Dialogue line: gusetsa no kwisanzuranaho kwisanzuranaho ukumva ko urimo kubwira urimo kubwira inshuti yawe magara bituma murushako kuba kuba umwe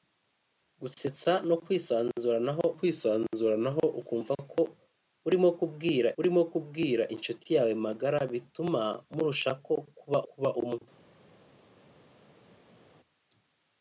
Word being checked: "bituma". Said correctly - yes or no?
yes